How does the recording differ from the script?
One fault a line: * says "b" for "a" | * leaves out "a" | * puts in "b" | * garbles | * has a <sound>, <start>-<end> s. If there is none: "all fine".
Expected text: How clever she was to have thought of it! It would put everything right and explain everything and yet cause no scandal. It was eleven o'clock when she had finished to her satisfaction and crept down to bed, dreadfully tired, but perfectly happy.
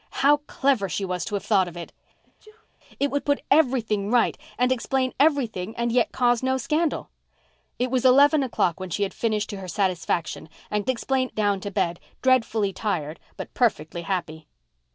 * has a sneeze, 2.2-2.7 s
* says "explain" for "crept"